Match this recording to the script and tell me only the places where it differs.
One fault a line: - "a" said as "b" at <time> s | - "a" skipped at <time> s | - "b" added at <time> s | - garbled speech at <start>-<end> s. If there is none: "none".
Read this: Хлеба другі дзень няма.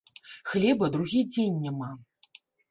none